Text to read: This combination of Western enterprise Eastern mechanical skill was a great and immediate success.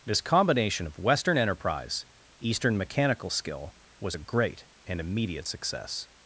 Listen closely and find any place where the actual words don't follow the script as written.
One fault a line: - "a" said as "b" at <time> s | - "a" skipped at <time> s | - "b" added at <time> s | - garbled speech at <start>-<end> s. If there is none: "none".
none